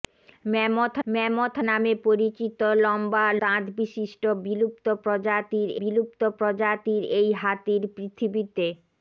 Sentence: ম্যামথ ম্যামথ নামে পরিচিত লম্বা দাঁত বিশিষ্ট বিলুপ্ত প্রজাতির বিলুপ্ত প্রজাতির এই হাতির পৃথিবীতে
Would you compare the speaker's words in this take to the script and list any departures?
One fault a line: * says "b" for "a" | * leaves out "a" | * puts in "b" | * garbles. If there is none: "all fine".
all fine